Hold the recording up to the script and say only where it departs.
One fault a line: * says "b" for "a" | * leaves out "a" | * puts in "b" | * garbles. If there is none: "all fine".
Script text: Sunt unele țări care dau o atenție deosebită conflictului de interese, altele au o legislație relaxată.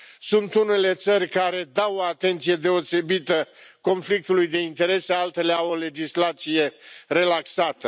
all fine